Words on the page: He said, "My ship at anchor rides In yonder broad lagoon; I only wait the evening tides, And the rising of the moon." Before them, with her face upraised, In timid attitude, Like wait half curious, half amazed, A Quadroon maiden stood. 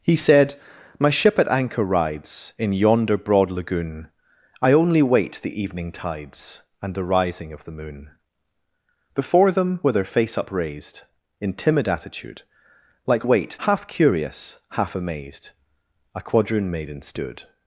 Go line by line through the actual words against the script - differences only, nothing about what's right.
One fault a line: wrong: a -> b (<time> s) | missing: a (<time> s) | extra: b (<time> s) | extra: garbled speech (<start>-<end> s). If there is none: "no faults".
no faults